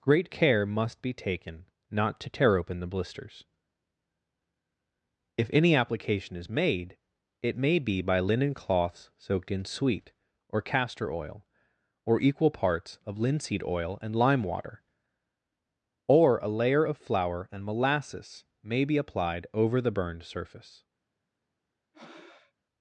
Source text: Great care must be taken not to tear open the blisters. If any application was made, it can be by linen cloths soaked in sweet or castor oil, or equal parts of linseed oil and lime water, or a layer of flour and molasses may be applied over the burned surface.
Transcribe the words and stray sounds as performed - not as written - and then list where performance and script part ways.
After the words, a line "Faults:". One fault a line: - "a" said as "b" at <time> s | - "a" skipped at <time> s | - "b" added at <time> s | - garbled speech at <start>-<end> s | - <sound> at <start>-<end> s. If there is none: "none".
Great care must be taken not to tear open the blisters. If any application is made, it may be by linen cloths soaked in sweet or castor oil, or equal parts of linseed oil and lime water, or a layer of flour and molasses may be applied over the burned surface.
Faults:
- "was" said as "is" at 6.4 s
- "can" said as "may" at 7.6 s
- breath at 21.9-22.5 s